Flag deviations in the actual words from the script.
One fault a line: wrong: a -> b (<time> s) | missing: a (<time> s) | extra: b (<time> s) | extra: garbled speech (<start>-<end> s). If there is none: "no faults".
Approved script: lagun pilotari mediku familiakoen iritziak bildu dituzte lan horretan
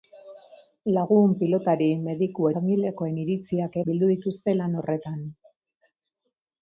no faults